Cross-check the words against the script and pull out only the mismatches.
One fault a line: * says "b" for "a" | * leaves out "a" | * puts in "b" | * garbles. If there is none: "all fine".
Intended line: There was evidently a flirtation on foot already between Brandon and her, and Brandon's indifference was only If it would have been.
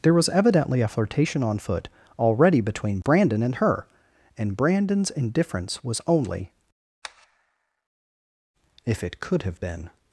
* says "could" for "would"